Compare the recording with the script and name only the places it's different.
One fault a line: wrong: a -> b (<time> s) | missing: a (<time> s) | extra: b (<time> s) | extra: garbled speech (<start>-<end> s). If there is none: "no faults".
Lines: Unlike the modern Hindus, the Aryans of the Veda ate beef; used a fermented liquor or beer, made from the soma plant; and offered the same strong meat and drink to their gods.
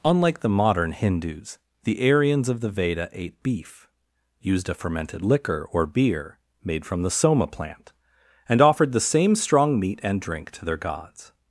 no faults